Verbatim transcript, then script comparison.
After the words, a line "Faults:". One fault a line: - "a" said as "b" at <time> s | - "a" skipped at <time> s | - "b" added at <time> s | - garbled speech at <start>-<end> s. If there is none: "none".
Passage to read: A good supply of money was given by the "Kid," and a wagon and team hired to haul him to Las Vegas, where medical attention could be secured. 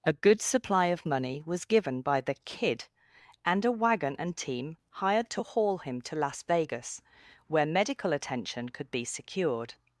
A good supply of money was given by the "Kid," and a wagon and team hired to haul him to Las Vegas, where medical attention could be secured.
Faults:
none